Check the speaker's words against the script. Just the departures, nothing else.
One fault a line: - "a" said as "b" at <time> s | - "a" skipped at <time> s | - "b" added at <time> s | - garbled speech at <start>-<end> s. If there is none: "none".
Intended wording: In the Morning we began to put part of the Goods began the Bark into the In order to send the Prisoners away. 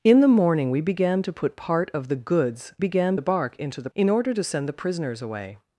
none